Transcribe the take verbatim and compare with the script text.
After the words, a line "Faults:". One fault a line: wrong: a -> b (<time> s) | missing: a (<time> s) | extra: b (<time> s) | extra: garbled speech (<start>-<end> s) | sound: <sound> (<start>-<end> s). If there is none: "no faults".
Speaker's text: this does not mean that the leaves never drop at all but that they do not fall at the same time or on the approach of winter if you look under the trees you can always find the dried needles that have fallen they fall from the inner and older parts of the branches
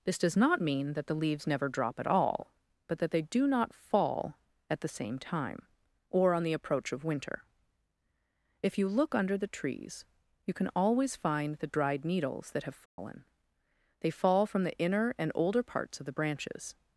this does not mean that the leaves never drop at all but that they do not fall at the same time or on the approach of winter if you look under the trees you can always find the dried needles that have fallen they fall from the inner and older parts of the branches
Faults:
sound: dropout (12.9-13.0 s)